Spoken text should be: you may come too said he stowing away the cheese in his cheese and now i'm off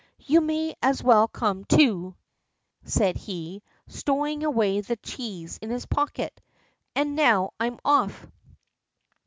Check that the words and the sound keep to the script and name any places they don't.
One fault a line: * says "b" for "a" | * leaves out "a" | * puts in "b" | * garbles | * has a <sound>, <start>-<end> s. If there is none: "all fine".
* puts in "as well"
* says "pocket" for "cheese"